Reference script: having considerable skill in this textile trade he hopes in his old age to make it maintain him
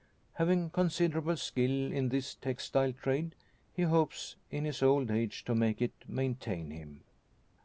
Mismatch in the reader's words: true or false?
false